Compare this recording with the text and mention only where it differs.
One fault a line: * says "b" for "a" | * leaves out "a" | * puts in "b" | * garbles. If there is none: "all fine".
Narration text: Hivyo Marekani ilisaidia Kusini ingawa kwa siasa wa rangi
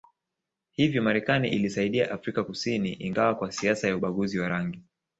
* puts in "Afrika"
* puts in "ya ubaguzi"